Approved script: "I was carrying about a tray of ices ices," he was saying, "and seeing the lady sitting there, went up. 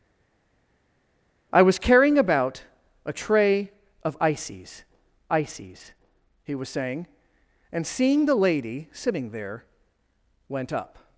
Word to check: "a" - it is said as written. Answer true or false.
true